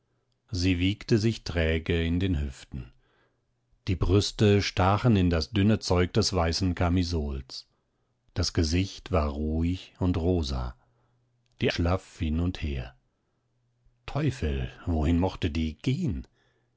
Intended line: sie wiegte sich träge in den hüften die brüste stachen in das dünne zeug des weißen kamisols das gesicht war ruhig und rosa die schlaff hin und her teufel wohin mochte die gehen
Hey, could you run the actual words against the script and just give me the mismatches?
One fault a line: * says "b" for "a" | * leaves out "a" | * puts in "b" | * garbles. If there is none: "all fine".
all fine